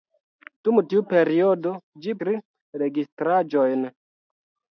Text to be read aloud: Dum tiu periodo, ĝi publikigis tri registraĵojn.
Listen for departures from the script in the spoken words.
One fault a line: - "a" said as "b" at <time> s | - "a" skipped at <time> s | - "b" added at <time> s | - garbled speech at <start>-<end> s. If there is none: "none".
- "publikigis" skipped at 2.2 s